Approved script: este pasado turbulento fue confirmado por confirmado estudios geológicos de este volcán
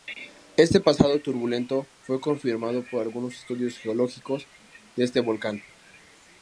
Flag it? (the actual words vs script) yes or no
yes